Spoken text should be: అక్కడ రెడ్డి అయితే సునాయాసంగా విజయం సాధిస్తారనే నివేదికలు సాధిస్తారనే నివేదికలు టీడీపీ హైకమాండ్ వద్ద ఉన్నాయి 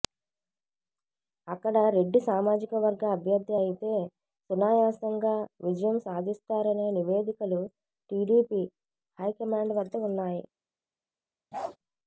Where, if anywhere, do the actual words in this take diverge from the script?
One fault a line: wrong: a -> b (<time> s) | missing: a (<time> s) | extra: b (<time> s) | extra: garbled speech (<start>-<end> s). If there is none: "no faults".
extra: సామాజికవర్గ అభ్యర్థి (2.3 s)
missing: సాధిస్తారనే నివేదికలు (7.6 s)